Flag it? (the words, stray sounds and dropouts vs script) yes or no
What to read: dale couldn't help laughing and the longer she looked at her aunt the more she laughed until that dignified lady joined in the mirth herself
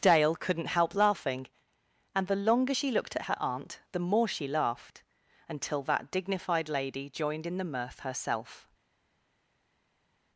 no